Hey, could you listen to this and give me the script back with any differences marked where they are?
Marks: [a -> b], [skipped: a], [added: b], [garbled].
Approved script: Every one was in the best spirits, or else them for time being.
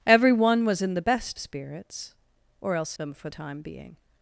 Every one was in the best spirits, or else them for time being.